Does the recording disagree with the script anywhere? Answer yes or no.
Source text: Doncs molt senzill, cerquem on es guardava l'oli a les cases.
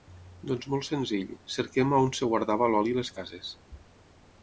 no